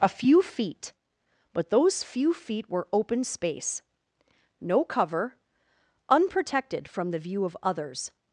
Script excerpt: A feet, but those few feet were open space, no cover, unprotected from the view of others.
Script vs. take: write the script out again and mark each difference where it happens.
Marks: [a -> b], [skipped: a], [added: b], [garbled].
A [added: few] feet, but those few feet were open space, no cover, unprotected from the view of others.